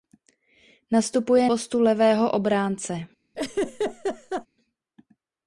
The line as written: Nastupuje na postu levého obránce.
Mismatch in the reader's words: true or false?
true